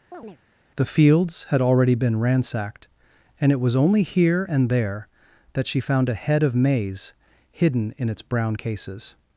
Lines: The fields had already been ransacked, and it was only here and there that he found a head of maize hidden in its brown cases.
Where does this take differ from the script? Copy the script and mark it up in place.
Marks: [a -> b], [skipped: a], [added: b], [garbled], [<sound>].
[chirp] The fields had already been ransacked, and it was only here and there that [he -> she] found a head of maize hidden in its brown cases.